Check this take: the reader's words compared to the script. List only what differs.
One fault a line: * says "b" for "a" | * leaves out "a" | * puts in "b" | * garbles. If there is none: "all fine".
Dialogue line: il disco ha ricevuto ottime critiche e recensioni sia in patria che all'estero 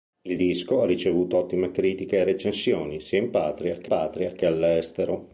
* puts in "patria che"